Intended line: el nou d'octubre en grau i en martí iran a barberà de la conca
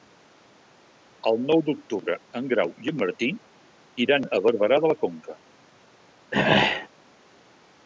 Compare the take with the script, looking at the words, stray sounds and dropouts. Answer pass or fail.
fail